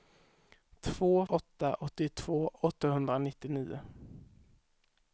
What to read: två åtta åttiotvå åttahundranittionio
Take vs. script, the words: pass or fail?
pass